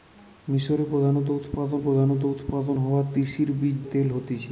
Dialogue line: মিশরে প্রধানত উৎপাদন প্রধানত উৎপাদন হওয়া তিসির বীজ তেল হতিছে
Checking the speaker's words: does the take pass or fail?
pass